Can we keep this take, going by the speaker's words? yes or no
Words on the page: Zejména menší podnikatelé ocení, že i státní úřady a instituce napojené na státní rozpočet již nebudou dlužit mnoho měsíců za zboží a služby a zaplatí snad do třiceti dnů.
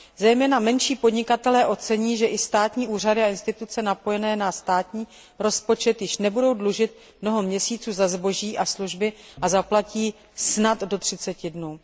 yes